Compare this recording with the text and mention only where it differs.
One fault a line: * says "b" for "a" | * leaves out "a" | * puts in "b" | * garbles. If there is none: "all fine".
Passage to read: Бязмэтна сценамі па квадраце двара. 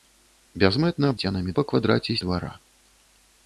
all fine